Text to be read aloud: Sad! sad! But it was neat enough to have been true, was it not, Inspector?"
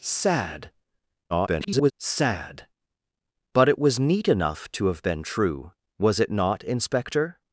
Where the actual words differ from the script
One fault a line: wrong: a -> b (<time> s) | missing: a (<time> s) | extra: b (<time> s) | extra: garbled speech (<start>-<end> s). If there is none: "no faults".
extra: garbled speech (1.3-1.9 s)